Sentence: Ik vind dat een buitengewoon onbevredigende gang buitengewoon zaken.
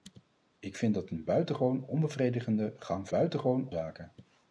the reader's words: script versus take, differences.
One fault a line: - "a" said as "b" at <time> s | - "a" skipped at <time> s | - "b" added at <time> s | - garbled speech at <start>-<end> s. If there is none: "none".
none